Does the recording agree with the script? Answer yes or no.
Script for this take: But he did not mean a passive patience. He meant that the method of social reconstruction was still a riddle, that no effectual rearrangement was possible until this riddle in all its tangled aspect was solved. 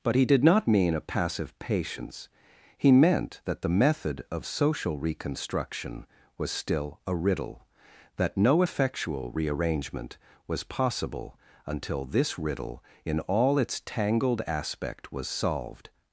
yes